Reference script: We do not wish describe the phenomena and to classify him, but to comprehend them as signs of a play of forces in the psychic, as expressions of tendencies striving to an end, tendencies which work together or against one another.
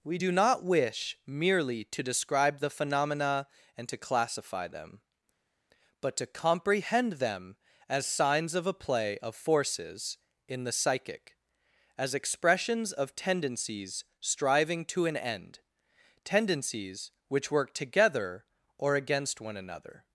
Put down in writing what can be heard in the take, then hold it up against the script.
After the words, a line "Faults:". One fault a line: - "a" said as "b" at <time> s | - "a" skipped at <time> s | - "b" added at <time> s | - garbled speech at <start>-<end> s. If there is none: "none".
We do not wish merely to describe the phenomena and to classify them, but to comprehend them as signs of a play of forces in the psychic, as expressions of tendencies striving to an end, tendencies which work together or against one another.
Faults:
- "merely to" added at 1.3 s
- "him" said as "them" at 4.7 s